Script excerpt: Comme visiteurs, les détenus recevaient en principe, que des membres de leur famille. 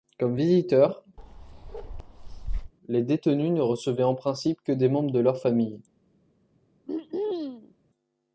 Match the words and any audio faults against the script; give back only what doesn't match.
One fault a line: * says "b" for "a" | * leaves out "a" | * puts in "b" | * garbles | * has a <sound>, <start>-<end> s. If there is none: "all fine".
* has a bark, 1.2-2.7 s
* puts in "ne"
* has a throat clearing, 6.9-7.7 s